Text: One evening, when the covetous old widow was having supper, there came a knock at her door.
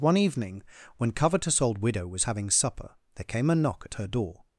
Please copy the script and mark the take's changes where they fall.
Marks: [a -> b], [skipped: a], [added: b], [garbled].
One evening, when [skipped: the] covetous old widow was having supper, there came a knock at her door.